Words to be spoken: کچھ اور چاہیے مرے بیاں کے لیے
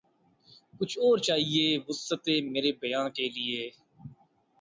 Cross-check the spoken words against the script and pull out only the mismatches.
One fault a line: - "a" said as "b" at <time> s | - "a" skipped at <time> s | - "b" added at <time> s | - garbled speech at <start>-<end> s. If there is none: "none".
- "وسعت" added at 1.9 s